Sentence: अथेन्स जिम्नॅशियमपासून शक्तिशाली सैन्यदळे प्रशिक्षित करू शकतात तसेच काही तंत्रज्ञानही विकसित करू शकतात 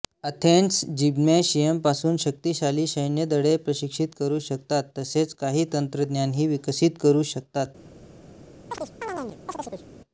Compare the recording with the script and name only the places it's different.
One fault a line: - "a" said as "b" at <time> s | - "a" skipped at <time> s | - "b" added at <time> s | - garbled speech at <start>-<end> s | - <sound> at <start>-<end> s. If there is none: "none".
- chirp at 8.7-9.8 s